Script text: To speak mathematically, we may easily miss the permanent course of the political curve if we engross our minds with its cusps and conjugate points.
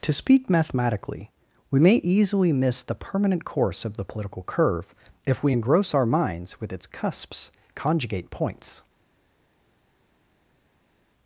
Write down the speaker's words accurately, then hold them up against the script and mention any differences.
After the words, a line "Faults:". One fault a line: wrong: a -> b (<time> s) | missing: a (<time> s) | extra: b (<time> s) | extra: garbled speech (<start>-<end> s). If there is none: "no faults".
To speak mathematically, we may easily miss the permanent course of the political curve if we engross our minds with its cusps conjugate points.
Faults:
missing: and (7.5 s)